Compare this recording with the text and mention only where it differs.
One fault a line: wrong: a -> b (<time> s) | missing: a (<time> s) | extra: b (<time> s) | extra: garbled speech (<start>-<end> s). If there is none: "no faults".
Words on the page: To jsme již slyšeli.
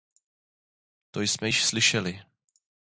no faults